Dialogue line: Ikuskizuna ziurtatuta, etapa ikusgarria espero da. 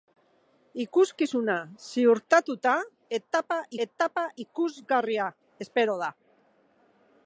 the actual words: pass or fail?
fail